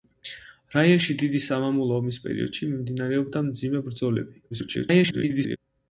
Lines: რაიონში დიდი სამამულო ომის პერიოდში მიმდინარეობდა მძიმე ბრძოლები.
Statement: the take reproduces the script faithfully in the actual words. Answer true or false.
false